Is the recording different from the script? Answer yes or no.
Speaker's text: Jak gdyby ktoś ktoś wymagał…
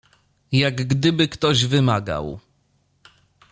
yes